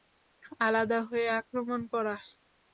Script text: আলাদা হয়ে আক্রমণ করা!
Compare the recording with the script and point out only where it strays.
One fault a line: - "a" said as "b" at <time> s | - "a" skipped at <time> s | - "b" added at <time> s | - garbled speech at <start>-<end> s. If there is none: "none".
none